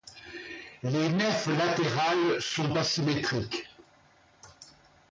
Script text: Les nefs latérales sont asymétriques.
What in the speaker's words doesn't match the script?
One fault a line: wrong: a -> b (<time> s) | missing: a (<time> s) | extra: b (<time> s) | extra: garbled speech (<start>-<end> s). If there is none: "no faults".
no faults